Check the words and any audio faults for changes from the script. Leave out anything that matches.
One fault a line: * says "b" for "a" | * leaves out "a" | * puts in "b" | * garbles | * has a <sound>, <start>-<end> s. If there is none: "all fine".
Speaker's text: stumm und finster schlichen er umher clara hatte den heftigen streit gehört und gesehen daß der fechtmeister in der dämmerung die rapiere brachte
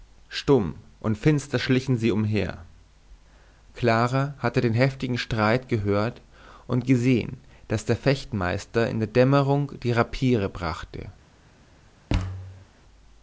* says "sie" for "er"
* has a thud, 12.1-12.7 s